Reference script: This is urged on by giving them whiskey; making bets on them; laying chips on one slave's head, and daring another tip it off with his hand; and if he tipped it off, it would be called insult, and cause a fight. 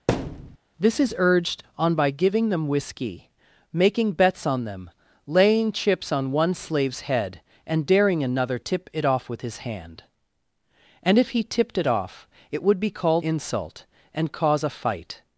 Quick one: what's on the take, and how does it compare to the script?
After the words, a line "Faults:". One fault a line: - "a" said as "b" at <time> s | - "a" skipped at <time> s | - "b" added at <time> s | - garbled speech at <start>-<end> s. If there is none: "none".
This is urged on by giving them whiskey; making bets on them; laying chips on one slave's head, and daring another tip it off with his hand; and if he tipped it off, it would be called insult, and cause a fight.
Faults:
none